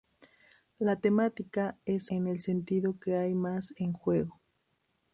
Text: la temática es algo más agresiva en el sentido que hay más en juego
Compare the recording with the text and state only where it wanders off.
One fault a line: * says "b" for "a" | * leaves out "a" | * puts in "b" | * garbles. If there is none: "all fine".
* leaves out "algo más agresiva"